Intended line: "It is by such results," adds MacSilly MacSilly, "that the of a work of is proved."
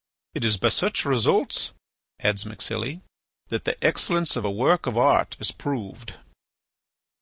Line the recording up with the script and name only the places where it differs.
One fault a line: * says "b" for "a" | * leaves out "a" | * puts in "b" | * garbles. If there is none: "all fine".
* leaves out "MacSilly"
* puts in "excellence"
* puts in "art"